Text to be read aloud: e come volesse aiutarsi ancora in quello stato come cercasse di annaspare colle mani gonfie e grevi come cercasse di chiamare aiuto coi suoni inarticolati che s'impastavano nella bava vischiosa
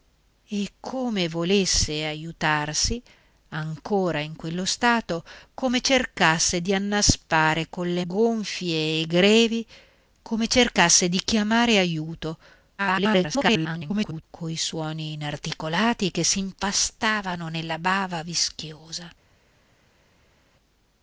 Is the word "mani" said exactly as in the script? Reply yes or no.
no